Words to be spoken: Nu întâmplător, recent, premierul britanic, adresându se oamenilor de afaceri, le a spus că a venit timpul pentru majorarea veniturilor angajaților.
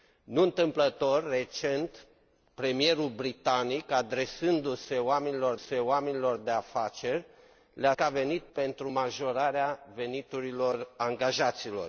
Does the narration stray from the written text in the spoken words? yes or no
yes